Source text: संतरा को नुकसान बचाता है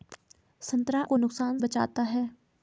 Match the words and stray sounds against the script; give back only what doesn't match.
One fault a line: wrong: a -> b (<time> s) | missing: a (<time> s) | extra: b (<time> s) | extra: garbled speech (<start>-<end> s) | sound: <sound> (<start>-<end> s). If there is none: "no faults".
no faults